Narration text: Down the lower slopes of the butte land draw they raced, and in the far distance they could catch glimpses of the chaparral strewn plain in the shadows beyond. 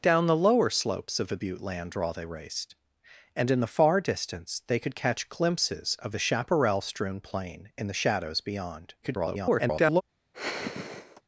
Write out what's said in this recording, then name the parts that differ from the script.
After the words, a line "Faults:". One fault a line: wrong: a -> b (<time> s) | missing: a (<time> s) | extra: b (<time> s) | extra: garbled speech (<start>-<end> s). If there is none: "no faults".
Down the lower slopes of the butte land draw they raced, and in the far distance they could catch glimpses of the chaparral strewn plain in the shadows beyond. [garbled]
Faults:
extra: garbled speech (9.0-10.0 s)